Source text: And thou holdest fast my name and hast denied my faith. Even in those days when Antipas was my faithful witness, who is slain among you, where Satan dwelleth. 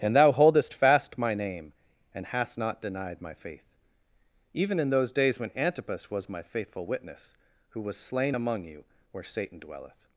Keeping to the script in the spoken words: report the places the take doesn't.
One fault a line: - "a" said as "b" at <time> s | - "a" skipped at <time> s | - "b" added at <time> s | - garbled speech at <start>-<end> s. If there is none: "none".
- "not" added at 2.6 s
- "is" said as "was" at 7.8 s